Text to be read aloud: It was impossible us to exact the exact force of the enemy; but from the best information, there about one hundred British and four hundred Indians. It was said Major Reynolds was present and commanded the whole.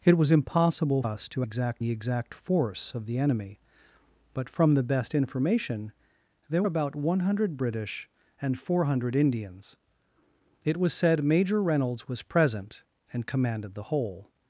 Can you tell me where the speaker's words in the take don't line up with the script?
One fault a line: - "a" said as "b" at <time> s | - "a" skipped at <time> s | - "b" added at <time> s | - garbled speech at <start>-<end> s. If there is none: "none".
none